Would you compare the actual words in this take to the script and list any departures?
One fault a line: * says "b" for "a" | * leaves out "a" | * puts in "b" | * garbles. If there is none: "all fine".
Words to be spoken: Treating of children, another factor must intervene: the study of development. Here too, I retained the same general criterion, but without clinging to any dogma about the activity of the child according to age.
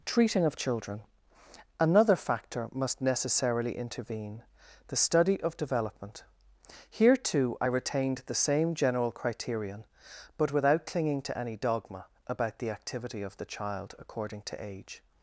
* puts in "necessarily"